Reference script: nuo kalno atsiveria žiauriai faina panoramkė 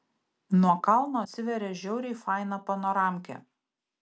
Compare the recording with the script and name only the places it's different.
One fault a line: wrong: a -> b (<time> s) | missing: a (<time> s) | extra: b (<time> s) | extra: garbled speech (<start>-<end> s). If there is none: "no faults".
no faults